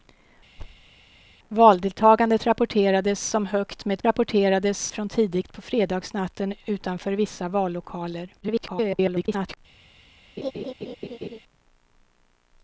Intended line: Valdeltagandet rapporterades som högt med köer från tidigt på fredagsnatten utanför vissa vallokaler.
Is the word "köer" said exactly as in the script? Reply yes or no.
no